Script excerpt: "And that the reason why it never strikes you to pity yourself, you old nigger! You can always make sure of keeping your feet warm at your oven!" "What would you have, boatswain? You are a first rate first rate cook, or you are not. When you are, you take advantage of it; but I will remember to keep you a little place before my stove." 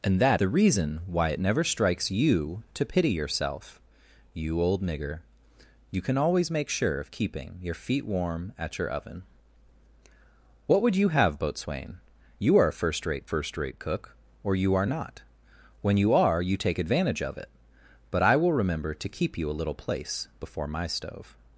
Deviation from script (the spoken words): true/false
false